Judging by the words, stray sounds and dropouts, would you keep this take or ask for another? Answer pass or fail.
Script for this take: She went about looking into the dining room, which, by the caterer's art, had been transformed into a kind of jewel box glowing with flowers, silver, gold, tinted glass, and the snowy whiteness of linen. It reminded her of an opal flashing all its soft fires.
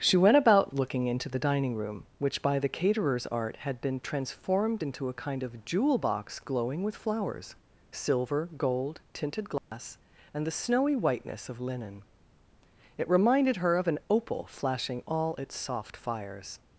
fail